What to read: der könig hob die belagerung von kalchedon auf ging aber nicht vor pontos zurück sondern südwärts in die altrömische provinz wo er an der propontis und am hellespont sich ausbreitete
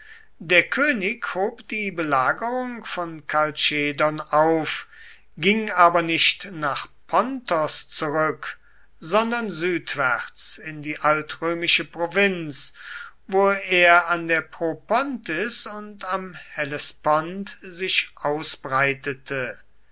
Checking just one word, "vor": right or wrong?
wrong